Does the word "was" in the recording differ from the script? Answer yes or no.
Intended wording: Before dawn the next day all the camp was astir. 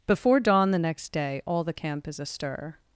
yes